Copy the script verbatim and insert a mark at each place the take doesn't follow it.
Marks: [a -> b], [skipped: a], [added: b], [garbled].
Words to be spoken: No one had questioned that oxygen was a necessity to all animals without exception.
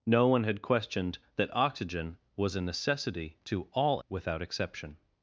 No one had questioned that oxygen was a necessity to all [skipped: animals] without exception.